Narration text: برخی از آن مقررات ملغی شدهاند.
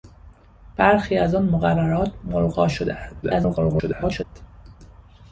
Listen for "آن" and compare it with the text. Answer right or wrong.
right